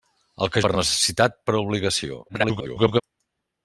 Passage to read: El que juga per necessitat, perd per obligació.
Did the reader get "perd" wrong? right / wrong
wrong